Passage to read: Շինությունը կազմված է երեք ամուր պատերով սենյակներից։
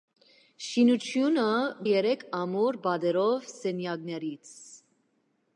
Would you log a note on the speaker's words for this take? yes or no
yes